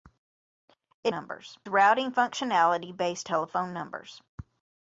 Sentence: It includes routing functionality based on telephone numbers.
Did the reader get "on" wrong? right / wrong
wrong